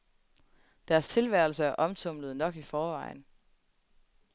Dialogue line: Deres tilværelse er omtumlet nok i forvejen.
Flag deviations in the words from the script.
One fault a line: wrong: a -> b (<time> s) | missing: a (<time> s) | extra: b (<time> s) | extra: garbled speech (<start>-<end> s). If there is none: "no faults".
no faults